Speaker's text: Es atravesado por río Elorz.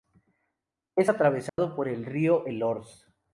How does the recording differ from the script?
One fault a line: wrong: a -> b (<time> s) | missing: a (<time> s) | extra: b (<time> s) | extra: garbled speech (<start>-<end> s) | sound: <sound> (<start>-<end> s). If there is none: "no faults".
sound: dropout (1.5-1.6 s)
extra: el (1.9 s)